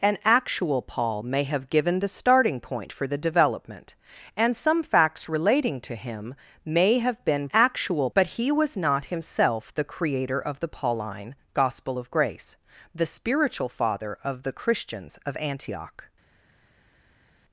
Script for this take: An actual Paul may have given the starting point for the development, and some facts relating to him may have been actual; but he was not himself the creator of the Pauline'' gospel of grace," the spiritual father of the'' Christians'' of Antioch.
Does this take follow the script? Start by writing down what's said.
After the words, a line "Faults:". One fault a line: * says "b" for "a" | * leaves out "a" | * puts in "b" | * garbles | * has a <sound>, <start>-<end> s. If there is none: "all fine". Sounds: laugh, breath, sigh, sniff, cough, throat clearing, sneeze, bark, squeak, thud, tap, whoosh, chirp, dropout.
An actual Paul may have given the starting point for the development, and some facts relating to him may have been actual; but he was not himself the creator of the Pauline'' gospel of grace," the spiritual father of the'' Christians'' of Antioch.
Faults:
all fine